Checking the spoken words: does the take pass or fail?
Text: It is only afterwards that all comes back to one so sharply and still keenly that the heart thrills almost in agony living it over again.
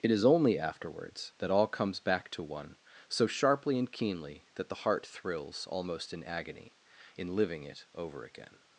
fail